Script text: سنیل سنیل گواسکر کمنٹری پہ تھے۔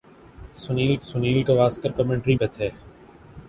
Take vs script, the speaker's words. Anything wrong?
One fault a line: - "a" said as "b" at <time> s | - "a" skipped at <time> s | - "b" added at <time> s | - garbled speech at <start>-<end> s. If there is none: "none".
none